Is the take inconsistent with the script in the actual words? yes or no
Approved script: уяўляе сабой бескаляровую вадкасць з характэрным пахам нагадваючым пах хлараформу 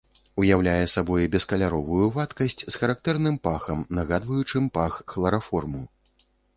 no